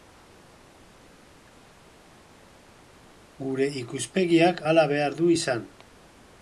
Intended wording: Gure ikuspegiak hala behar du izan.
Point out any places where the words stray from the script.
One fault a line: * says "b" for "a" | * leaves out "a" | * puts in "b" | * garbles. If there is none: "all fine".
all fine